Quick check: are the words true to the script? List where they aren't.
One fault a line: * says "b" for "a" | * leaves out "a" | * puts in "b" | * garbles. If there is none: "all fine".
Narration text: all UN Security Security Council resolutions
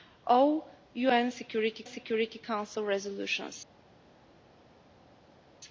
all fine